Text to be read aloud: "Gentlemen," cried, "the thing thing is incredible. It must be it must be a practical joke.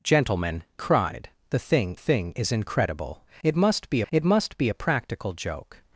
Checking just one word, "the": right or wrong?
right